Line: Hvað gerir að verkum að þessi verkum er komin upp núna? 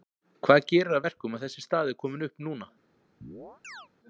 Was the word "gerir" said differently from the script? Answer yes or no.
no